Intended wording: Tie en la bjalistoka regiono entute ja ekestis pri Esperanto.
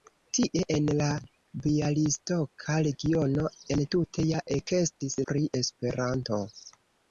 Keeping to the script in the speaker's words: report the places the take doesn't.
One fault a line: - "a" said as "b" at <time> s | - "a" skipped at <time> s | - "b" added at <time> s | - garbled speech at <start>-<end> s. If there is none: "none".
none